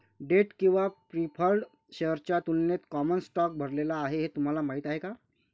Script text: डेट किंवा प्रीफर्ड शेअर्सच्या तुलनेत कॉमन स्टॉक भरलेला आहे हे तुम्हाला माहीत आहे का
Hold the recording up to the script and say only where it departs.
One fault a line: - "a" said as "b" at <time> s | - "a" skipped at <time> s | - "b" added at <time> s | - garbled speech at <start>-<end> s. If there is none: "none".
none